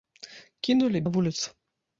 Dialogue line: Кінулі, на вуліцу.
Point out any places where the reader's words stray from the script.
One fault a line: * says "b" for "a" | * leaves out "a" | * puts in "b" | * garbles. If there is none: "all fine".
all fine